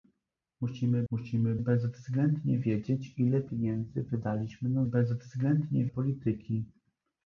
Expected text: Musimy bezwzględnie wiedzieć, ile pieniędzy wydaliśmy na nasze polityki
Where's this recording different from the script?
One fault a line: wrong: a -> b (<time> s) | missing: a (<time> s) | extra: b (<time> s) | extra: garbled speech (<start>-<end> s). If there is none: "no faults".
extra: musimy (1.1 s)
wrong: nasze -> bezwzględnie (4.8 s)